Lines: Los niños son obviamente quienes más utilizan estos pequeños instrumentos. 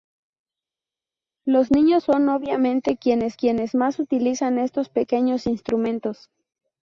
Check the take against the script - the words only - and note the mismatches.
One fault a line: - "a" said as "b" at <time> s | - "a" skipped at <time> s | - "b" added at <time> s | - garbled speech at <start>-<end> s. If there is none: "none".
- "quienes" added at 3.3 s